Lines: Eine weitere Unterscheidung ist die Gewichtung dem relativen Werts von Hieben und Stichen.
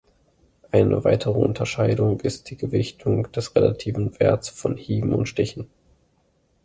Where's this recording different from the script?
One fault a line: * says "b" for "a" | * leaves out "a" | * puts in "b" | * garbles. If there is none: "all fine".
* says "des" for "dem"